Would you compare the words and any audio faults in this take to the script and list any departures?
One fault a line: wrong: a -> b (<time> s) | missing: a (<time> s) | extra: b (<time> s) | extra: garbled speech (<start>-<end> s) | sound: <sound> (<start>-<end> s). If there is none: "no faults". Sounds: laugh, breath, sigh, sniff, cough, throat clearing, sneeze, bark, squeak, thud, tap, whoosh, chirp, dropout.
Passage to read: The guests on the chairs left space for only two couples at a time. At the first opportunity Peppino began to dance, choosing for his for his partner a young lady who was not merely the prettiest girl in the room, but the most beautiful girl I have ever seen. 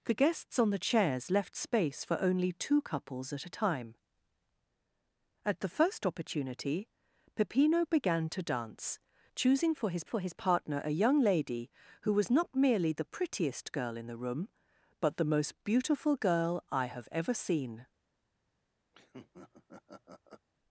sound: laugh (18.9-20.5 s)